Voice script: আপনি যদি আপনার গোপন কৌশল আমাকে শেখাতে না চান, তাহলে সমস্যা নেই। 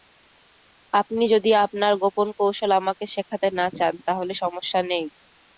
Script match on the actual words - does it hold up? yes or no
yes